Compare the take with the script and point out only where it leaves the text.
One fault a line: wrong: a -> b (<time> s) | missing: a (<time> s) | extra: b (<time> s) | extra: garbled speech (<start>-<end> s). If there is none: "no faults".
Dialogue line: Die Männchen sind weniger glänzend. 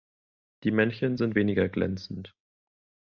no faults